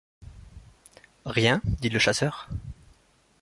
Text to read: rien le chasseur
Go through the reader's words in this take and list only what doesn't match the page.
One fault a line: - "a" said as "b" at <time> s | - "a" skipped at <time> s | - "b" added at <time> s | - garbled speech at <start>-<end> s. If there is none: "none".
- "dit" added at 1.6 s